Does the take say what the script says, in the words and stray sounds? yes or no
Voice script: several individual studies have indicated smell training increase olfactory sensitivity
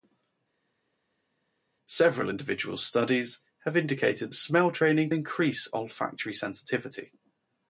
yes